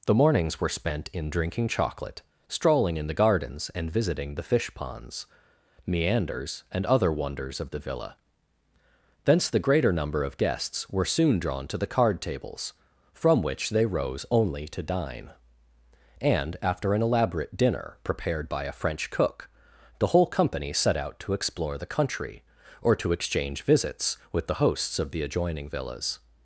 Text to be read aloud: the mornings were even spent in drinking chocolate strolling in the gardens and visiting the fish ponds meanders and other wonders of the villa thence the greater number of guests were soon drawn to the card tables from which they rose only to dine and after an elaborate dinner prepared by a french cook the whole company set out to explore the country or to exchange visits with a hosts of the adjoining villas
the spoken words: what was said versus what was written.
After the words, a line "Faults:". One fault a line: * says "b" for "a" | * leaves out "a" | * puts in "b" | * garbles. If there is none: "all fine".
the mornings were spent in drinking chocolate strolling in the gardens and visiting the fish ponds meanders and other wonders of the villa thence the greater number of guests were soon drawn to the card tables from which they rose only to dine and after an elaborate dinner prepared by a french cook the whole company set out to explore the country or to exchange visits with the hosts of the adjoining villas
Faults:
* leaves out "even"
* says "the" for "a"